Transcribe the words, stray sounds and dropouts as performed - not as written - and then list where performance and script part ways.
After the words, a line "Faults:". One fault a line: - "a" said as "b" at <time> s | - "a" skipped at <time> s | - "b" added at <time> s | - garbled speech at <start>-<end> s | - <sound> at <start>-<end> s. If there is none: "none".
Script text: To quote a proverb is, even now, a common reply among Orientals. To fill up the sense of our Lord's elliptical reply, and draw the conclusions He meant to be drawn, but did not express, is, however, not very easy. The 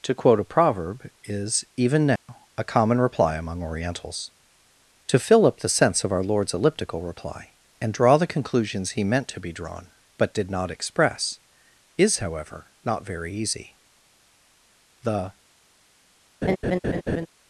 To quote a proverb is, even now, a common reply among Orientals. To fill up the sense of our Lord's elliptical reply, and draw the conclusions He meant to be drawn, but did not express, is, however, not very easy. The
Faults:
- dropout at 2.2-2.3 s
- laugh at 16.4-17.3 s